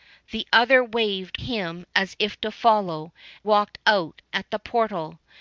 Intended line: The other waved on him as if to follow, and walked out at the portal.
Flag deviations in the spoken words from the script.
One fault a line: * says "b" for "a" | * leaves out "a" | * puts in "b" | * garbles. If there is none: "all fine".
* leaves out "on"
* leaves out "and"